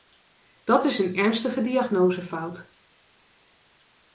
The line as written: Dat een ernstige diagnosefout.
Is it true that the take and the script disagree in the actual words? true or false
true